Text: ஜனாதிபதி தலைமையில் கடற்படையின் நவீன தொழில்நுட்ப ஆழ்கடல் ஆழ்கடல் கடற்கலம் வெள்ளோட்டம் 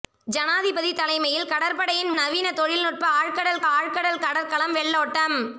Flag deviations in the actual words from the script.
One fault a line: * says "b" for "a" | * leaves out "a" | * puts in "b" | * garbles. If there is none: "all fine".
all fine